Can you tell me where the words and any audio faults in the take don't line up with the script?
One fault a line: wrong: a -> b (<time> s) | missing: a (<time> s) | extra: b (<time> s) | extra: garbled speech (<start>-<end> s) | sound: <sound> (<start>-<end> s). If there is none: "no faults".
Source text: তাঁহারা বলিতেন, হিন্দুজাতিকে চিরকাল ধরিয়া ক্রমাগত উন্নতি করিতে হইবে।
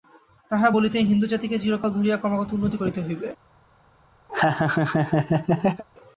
sound: laugh (4.3-5.8 s)